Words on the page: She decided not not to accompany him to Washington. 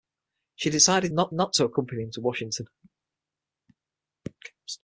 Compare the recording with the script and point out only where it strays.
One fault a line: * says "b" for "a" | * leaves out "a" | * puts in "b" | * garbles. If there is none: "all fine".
all fine